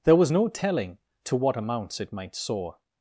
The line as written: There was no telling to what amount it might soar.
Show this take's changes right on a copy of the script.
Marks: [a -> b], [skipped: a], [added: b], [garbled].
There was no telling to what [amount -> amounts] it might soar.